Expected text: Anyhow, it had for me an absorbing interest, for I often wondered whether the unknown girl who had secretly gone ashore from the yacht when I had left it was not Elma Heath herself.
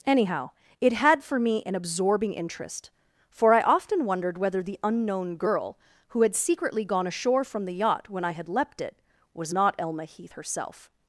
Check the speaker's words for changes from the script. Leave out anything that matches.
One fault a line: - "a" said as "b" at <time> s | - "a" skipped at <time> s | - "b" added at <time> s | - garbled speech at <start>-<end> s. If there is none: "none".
- "left" said as "leapt" at 8.5 s